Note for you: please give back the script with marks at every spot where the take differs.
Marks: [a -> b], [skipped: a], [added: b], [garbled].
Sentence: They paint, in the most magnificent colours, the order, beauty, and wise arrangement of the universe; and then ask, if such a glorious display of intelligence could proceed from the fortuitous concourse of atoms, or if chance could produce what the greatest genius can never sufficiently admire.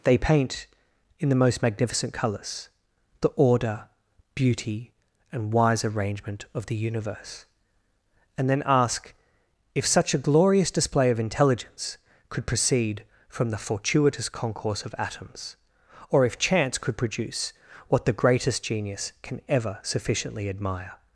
They paint, in the most magnificent colours, the order, beauty, and wise arrangement of the universe; and then ask, if such a glorious display of intelligence could proceed from the fortuitous concourse of atoms, or if chance could produce what the greatest genius can [never -> ever] sufficiently admire.